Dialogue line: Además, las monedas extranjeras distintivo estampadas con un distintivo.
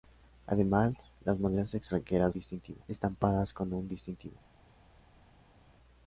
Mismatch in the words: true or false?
false